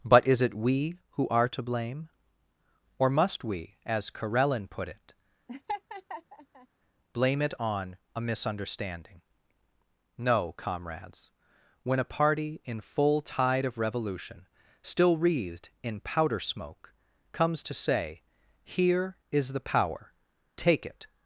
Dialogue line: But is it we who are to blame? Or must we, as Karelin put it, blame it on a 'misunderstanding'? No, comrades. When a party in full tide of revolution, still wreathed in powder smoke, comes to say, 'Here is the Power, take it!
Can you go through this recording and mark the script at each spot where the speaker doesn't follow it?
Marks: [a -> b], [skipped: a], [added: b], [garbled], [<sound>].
But is it we who are to blame? Or must we, as Karelin put it, [laugh] blame it on a 'misunderstanding'? No, comrades. When a party in full tide of revolution, still wreathed in powder smoke, comes to say, 'Here is the Power, take it!